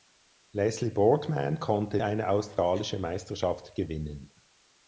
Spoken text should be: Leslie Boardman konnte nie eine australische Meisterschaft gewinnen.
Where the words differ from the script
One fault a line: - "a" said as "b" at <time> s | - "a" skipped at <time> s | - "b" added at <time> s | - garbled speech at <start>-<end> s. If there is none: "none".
- "nie" skipped at 2.0 s